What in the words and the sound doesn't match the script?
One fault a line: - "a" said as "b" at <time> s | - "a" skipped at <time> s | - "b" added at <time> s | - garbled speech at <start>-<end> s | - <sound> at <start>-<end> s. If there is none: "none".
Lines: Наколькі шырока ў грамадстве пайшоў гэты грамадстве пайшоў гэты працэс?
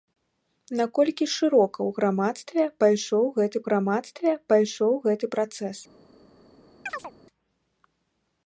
- chirp at 6.9-7.1 s